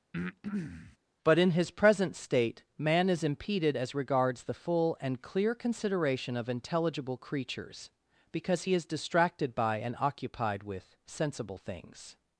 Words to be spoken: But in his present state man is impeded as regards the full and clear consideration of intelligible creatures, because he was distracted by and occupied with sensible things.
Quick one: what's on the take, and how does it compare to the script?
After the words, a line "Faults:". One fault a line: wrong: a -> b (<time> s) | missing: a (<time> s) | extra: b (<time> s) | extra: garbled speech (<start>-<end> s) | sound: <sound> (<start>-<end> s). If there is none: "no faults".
But in his present state man is impeded as regards the full and clear consideration of intelligible creatures, because he is distracted by and occupied with sensible things.
Faults:
sound: breath (0.1-1.0 s)
wrong: was -> is (8.7 s)